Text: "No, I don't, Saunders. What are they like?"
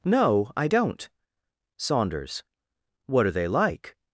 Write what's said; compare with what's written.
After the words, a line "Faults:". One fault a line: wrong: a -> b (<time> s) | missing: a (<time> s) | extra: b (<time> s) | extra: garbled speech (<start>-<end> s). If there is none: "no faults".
"No, I don't, Saunders. What are they like?"
Faults:
no faults